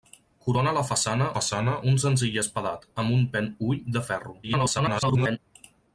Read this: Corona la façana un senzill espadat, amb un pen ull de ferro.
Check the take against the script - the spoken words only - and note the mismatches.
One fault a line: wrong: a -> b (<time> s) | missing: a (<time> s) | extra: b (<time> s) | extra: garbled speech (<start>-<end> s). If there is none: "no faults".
extra: façana (1.4 s)
extra: garbled speech (4.4-5.4 s)